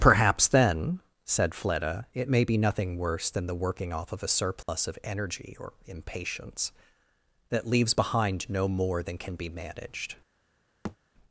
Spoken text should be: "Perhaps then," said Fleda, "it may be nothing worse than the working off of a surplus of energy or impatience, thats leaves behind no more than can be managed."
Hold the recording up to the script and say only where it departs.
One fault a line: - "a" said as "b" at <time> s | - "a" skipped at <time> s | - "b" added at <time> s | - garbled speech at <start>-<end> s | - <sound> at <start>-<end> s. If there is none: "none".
- dropout at 4.6-4.7 s
- "thats" said as "that" at 7.5 s
- thud at 10.8-11.0 s